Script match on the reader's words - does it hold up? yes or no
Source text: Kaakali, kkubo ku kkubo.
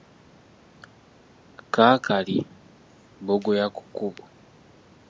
no